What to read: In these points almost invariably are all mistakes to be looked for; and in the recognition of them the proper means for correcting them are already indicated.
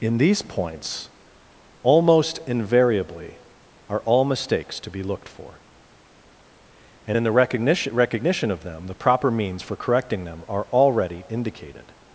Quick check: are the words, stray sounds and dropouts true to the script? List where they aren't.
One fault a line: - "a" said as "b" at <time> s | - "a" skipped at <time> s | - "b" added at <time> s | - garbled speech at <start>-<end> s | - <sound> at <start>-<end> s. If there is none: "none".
- "recognition" added at 7.9 s